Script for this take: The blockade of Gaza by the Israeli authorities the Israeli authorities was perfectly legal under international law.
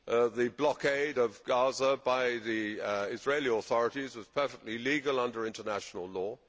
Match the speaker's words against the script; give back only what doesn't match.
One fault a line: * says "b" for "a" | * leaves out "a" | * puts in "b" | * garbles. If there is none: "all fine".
* leaves out "the Israeli authorities"